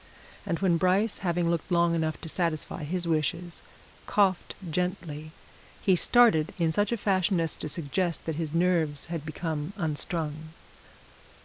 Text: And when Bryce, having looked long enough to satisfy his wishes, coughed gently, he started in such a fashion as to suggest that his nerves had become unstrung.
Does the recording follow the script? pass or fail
pass